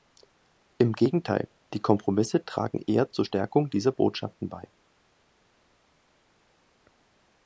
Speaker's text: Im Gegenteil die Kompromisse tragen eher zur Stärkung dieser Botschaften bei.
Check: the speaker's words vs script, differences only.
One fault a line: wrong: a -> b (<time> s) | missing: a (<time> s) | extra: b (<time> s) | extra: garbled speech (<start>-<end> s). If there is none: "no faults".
no faults